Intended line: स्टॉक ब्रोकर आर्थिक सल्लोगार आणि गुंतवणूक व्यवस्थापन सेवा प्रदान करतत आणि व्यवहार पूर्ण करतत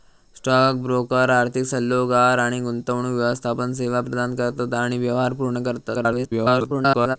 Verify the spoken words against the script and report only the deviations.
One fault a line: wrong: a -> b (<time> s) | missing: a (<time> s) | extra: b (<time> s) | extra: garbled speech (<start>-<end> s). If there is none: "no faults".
extra: garbled speech (5.9-7.2 s)